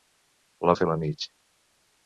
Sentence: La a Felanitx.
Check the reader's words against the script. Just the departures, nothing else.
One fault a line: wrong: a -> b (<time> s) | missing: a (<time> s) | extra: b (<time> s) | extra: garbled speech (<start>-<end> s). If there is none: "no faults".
no faults